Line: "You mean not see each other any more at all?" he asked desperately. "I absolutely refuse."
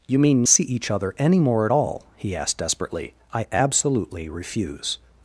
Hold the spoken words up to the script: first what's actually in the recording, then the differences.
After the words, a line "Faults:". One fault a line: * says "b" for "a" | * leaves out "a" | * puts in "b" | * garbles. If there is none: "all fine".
"You mean see each other any more at all?" he asked desperately. "I absolutely refuse."
Faults:
* leaves out "not"